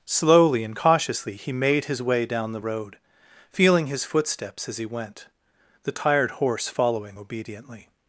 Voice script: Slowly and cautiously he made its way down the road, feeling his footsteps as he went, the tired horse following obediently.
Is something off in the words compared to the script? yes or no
yes